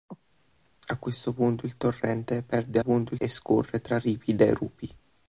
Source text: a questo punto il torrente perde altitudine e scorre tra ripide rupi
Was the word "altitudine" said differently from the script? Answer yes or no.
yes